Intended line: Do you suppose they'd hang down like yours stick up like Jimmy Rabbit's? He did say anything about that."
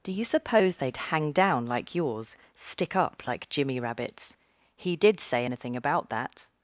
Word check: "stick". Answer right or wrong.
right